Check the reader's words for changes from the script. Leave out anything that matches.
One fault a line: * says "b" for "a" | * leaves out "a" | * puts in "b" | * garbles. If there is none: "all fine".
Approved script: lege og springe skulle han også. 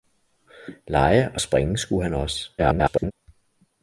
* garbles